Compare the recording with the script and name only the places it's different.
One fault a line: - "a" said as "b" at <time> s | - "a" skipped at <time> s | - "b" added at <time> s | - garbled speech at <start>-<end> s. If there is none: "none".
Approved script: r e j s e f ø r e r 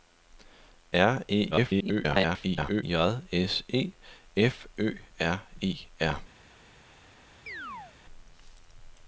- garbled speech at 1.5-2.8 s